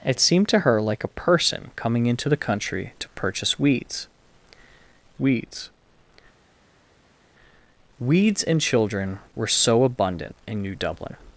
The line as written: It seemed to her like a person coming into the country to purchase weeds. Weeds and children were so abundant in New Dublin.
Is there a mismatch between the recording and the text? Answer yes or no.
yes